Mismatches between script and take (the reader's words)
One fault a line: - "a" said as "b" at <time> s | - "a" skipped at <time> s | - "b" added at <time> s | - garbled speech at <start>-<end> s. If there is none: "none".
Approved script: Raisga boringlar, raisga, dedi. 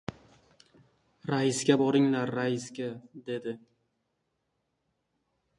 none